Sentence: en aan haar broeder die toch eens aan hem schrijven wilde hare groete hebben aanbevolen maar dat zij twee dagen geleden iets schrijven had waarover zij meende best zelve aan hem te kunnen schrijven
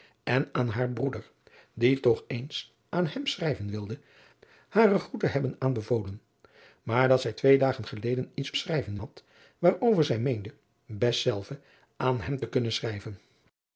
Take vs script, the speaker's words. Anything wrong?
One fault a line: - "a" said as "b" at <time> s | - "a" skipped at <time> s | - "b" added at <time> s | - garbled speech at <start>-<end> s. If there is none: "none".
none